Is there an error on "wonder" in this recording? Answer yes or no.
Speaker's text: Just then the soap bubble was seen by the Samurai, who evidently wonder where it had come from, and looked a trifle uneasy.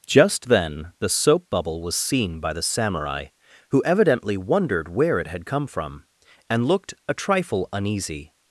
yes